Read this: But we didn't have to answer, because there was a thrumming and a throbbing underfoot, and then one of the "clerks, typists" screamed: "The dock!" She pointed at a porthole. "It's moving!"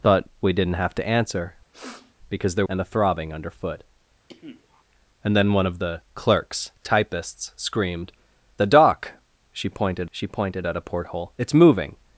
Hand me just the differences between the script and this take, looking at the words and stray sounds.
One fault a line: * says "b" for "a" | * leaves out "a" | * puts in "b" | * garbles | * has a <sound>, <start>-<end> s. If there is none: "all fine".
* has a sniff, 1.7-2.2 s
* leaves out "was a thrumming"
* has a cough, 4.3-4.8 s
* puts in "she pointed"